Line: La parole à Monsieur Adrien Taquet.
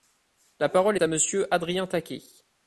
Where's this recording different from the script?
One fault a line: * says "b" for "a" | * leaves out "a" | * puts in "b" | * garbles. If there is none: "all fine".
all fine